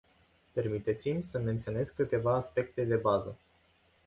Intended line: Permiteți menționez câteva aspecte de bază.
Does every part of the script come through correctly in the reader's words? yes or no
no